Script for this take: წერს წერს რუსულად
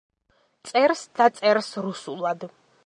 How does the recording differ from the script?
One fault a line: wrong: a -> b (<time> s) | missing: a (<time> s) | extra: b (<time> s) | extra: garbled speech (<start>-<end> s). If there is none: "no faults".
extra: და (1.2 s)